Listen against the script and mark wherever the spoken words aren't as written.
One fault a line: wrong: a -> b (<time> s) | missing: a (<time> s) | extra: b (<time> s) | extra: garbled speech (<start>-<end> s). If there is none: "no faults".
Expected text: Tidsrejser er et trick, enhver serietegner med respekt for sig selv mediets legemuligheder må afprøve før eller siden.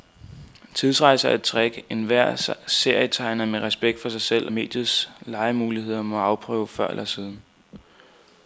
no faults